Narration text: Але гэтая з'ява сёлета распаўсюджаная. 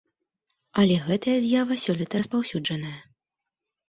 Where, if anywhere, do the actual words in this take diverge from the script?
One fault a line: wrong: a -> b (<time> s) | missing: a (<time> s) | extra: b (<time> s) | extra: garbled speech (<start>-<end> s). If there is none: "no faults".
no faults